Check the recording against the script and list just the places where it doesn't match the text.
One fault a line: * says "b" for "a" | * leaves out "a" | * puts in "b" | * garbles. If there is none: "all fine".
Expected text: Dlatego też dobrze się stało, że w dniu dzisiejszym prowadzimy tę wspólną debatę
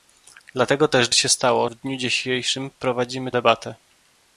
* leaves out "dobrze"
* leaves out "że"
* leaves out "tę wspólną"